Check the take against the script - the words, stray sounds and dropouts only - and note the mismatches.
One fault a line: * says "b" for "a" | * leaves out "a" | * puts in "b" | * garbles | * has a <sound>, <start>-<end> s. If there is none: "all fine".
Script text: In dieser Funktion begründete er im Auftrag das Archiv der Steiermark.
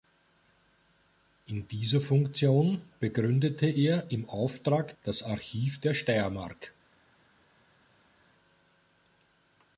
all fine